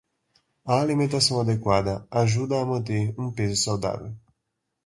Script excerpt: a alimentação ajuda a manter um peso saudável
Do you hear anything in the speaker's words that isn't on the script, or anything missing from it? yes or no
yes